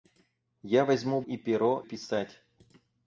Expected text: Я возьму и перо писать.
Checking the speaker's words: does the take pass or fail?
pass